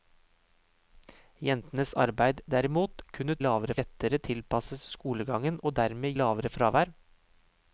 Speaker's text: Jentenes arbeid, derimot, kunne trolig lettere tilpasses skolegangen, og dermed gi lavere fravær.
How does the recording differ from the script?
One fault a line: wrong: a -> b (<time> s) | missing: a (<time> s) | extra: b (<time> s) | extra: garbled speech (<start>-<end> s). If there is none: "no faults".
wrong: trolig -> lavere (3.5 s)
missing: gi (6.1 s)